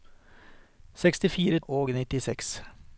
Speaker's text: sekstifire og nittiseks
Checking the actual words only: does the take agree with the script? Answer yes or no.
yes